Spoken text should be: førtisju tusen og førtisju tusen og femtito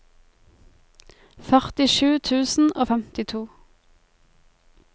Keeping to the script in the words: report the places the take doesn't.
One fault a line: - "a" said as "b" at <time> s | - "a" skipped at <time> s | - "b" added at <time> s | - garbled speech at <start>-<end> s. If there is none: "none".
- "førtisju tusen og" skipped at 2.9 s